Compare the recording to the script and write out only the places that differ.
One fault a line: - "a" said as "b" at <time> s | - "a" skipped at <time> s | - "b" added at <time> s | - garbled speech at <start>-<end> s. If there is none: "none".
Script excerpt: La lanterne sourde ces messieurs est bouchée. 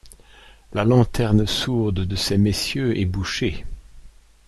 - "de" added at 2.0 s